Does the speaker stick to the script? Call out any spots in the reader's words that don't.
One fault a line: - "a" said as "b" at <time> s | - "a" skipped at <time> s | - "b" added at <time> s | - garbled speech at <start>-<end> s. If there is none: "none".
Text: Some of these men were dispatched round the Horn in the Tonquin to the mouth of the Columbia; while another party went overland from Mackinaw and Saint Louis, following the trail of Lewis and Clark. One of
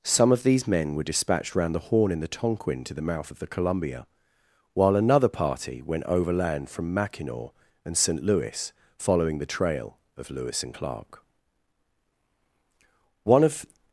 none